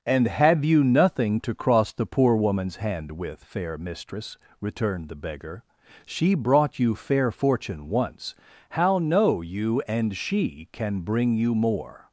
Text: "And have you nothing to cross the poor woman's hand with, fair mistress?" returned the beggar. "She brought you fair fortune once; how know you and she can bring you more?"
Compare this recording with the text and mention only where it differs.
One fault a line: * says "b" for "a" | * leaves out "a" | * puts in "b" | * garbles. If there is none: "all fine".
all fine